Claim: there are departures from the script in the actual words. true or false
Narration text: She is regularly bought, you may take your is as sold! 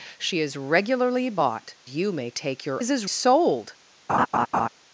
false